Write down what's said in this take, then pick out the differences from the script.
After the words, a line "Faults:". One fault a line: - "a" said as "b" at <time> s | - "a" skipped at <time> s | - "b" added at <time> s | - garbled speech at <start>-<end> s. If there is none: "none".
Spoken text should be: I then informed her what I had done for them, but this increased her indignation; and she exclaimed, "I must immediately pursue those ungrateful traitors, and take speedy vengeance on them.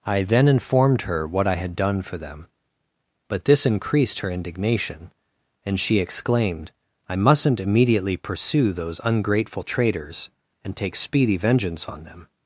I then informed her what I had done for them, but this increased her indignation; and she exclaimed, "I mustn't immediately pursue those ungrateful traitors, and take speedy vengeance on them.
Faults:
- "must" said as "mustn't" at 7.2 s